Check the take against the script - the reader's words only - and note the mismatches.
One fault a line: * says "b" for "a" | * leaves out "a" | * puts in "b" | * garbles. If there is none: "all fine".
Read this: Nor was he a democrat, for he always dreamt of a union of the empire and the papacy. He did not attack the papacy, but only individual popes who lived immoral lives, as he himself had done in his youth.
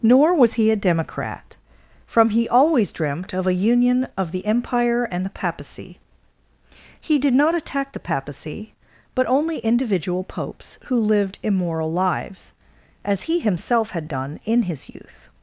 * says "from" for "for"